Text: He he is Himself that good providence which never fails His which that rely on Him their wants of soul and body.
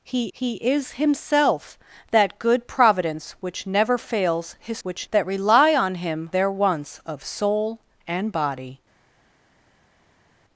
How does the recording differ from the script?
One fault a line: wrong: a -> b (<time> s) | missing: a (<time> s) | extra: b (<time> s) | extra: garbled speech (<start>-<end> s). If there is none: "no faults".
no faults